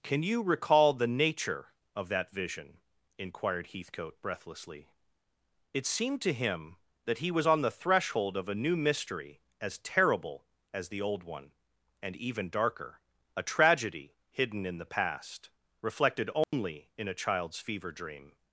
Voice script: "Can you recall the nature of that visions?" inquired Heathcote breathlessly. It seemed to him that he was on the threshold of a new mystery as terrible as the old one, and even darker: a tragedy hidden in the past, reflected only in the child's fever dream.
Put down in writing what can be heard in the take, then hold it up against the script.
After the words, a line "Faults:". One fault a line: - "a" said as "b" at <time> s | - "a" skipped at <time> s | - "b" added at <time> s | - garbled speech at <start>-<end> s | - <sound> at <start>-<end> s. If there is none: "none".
"Can you recall the nature of that vision?" inquired Heathcote breathlessly. It seemed to him that he was on the threshold of a new mystery as terrible as the old one, and even darker: a tragedy hidden in the past, reflected only in a child's fever dream.
Faults:
- "visions" said as "vision" at 2.3 s
- dropout at 16.4-16.5 s
- "the" said as "a" at 17.1 s